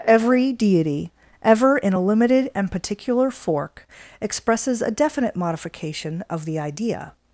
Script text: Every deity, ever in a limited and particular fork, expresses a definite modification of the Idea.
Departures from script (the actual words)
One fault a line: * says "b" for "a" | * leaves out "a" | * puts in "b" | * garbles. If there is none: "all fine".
all fine